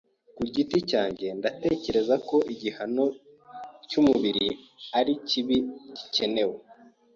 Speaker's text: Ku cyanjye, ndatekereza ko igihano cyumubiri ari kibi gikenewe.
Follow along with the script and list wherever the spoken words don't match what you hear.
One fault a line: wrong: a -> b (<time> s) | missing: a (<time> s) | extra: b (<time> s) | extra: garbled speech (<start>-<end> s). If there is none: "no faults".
extra: giti (0.5 s)